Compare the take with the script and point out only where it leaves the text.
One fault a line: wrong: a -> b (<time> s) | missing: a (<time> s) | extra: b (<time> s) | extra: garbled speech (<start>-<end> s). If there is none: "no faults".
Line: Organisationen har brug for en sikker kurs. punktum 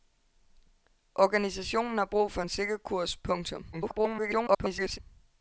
extra: garbled speech (3.7-5.0 s)